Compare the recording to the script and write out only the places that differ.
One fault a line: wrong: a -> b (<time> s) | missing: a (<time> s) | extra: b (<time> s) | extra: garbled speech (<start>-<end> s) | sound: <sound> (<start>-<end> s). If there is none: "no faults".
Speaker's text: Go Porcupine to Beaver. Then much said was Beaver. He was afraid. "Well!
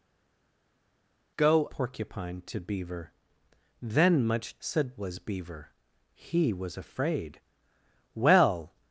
no faults